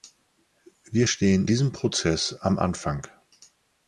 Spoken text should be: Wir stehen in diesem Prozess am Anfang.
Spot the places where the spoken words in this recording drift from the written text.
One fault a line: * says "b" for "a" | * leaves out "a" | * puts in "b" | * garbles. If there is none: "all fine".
* leaves out "in"